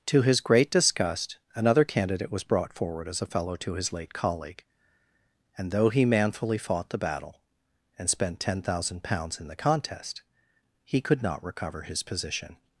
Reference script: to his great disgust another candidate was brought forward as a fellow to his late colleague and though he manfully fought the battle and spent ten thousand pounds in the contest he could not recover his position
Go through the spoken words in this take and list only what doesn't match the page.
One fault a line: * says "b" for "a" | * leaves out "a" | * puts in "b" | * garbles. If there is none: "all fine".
all fine